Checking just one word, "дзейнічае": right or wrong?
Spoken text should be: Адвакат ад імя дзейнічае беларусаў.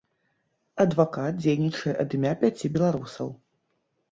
wrong